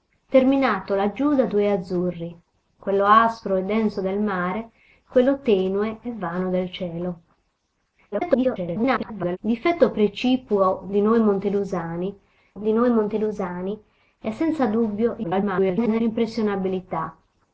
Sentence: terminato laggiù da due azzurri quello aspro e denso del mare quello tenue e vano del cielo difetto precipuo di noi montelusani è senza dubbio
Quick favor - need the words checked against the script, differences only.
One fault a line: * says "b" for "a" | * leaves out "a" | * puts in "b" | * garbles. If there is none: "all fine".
* garbles
* puts in "di noi montelusani"
* garbles